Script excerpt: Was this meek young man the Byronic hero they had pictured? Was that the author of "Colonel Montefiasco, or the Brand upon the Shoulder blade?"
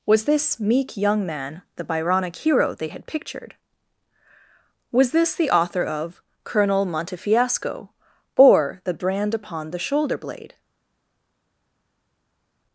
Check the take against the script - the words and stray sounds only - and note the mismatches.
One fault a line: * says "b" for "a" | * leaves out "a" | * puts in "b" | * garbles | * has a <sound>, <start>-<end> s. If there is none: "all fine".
* says "this" for "that"